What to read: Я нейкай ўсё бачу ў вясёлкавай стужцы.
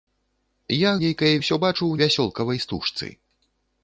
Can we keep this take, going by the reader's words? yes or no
yes